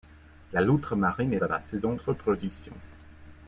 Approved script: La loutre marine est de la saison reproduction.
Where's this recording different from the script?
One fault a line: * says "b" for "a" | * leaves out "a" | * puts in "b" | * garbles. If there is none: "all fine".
all fine